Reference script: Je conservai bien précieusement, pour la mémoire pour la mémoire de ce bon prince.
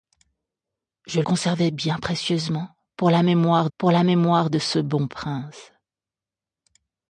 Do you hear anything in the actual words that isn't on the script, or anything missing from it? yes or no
no